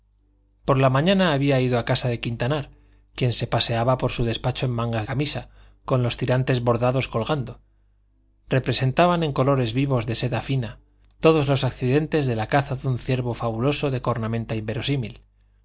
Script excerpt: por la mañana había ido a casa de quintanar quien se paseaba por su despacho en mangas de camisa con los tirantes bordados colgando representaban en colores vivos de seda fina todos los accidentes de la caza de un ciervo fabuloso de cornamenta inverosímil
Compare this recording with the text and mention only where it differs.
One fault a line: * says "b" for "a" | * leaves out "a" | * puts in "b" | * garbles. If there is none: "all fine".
* leaves out "de"